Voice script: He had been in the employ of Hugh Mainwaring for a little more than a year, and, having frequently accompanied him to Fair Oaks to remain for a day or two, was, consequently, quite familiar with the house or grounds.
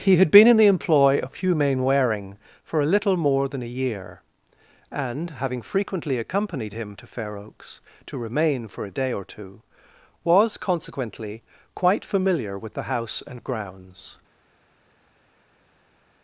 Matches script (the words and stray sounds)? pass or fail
fail